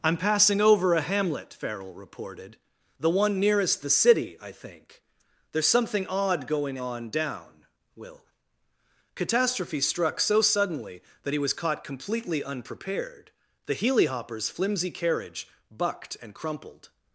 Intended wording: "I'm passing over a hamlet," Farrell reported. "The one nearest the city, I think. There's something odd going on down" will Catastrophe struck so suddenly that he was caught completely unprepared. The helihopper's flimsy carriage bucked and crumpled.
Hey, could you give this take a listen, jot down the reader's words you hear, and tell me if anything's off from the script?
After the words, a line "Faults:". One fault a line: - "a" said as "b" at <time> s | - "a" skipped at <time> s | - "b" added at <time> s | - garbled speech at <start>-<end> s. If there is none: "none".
"I'm passing over a hamlet," Farrell reported. "The one nearest the city, I think. There's something odd going on down" will Catastrophe struck so suddenly that he was caught completely unprepared. The helihopper's flimsy carriage bucked and crumpled.
Faults:
none